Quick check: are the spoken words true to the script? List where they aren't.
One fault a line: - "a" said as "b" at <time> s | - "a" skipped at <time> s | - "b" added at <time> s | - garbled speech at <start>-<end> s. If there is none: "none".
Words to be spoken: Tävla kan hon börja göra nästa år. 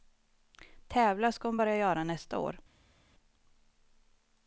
- "kan" said as "ska" at 1.3 s